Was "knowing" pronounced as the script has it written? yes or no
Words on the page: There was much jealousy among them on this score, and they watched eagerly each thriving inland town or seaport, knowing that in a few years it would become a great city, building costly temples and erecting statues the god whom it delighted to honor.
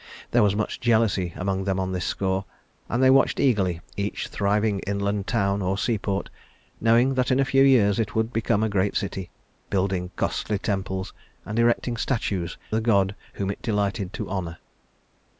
yes